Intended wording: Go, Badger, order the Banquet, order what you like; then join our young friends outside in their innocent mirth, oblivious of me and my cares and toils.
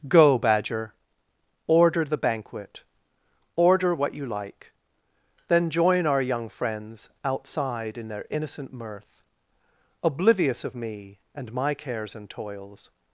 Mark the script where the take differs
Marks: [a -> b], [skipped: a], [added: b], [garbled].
Go, Badger, order the Banquet, order what you like; then join our young friends outside in their innocent mirth, oblivious of me and my cares and toils.